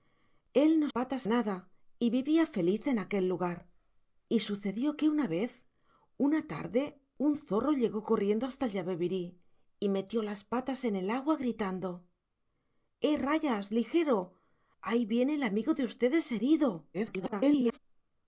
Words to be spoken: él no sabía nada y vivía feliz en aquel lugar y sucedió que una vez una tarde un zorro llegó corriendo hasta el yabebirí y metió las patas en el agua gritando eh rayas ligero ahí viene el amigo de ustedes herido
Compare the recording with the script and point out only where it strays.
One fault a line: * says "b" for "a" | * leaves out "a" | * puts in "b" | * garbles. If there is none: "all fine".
* says "patas" for "sabía"
* garbles